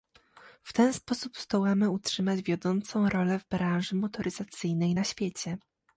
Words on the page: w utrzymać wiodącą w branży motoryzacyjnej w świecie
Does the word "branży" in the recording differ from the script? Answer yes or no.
no